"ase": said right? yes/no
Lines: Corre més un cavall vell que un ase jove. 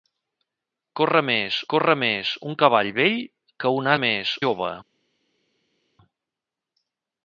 no